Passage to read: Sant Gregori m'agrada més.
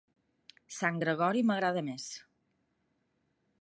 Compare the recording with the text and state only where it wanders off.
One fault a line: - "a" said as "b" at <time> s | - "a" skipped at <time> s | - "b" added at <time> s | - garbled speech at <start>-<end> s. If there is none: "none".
none